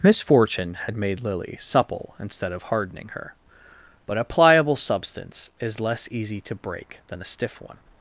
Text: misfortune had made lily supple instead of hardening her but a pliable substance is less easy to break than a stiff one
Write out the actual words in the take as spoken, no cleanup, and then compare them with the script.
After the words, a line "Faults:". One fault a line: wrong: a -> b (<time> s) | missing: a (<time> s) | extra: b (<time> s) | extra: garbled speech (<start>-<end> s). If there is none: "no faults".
misfortune had made lily supple instead of hardening her but a pliable substance is less easy to break than a stiff one
Faults:
no faults